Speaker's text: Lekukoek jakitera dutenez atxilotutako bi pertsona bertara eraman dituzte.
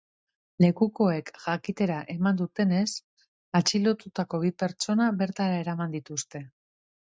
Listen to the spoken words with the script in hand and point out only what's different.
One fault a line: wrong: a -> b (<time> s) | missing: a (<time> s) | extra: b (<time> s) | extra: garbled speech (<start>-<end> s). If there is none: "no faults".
extra: eman (2.1 s)